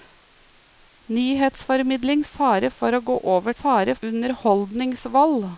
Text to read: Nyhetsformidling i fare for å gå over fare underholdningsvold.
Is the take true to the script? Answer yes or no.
yes